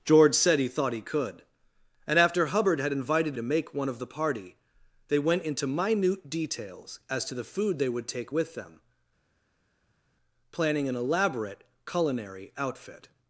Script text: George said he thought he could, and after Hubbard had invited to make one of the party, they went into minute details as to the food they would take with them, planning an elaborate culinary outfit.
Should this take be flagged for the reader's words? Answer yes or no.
no